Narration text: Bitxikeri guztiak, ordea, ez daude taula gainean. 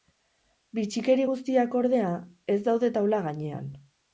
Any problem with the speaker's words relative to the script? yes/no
no